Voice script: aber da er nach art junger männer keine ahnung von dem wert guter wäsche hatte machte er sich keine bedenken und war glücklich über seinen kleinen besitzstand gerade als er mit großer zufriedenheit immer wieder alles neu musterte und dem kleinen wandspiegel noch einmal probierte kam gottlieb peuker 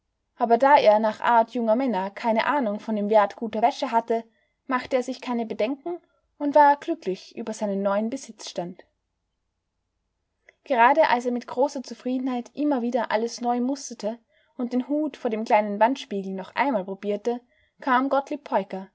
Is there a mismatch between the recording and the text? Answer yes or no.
yes